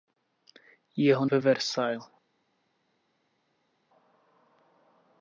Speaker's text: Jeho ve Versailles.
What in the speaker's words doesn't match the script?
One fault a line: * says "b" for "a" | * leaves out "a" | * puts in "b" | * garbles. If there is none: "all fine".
all fine